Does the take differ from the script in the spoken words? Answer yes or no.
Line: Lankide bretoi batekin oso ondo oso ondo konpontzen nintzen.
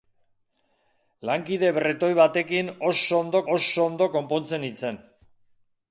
no